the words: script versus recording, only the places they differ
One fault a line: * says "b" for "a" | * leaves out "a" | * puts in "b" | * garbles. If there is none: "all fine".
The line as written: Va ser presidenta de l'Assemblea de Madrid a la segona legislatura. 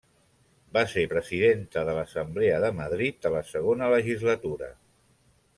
all fine